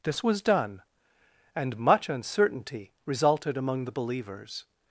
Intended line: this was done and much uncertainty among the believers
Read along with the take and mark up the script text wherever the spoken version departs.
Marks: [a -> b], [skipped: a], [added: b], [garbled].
this was done and much uncertainty [added: resulted] among the believers